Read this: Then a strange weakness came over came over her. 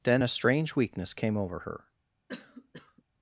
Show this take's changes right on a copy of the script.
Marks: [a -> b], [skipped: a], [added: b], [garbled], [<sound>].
Then a strange weakness came over [skipped: came over] her. [cough]